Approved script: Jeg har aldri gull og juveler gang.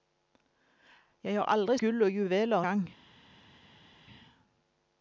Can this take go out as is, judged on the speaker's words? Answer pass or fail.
pass